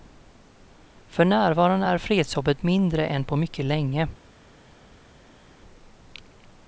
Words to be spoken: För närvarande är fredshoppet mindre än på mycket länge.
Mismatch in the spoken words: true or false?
false